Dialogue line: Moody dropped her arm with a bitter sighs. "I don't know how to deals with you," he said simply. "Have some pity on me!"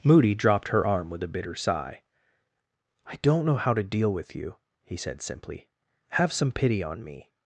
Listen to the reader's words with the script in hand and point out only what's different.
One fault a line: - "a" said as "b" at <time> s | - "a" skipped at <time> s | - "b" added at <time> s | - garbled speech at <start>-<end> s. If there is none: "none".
- "sighs" said as "sigh" at 1.6 s
- "deals" said as "deal" at 3.8 s